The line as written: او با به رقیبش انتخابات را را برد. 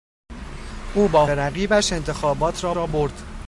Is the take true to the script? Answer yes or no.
yes